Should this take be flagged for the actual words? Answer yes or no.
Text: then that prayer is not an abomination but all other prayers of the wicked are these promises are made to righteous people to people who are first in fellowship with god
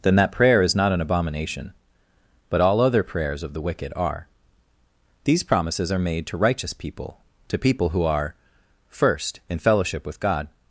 no